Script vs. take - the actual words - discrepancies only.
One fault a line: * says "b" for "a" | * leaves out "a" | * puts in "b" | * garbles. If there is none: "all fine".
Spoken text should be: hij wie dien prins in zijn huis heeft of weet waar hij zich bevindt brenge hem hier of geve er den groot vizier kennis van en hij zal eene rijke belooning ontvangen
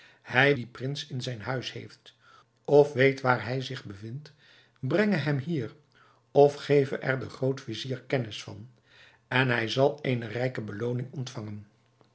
* leaves out "wie"